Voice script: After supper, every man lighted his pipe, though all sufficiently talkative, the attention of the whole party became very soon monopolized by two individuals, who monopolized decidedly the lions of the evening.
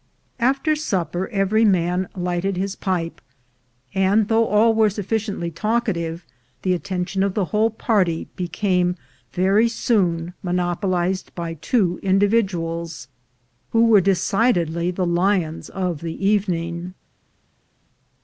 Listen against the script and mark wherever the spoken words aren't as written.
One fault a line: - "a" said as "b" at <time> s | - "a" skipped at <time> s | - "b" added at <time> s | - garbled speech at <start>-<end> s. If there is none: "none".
- "and" added at 3.9 s
- "were" added at 4.7 s
- "monopolized" said as "were" at 13.9 s